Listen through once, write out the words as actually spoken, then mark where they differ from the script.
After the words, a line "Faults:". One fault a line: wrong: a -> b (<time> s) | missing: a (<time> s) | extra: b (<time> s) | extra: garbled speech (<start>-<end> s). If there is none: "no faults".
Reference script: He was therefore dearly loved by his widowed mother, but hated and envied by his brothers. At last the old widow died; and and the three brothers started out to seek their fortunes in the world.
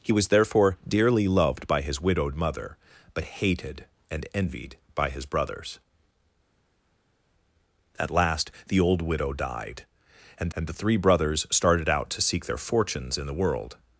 He was therefore dearly loved by his widowed mother, but hated and envied by his brothers. At last the old widow died; and and the three brothers started out to seek their fortunes in the world.
Faults:
no faults